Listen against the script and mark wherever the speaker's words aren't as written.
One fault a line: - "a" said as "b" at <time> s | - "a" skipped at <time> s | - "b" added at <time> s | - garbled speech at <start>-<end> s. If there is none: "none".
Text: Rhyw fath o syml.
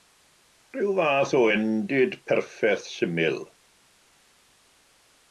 - "endid perffaith" added at 1.5 s